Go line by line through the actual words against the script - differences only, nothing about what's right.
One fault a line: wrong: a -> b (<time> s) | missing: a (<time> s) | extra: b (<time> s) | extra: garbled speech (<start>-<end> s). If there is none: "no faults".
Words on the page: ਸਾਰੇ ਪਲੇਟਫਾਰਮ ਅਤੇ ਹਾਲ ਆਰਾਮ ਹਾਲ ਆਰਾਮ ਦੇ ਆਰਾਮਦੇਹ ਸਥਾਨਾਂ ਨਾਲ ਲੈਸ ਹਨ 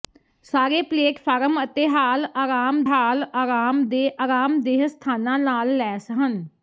no faults